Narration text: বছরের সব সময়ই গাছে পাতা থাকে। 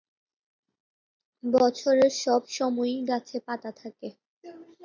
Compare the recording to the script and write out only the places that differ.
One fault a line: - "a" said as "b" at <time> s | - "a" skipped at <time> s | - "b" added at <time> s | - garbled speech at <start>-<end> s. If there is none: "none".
none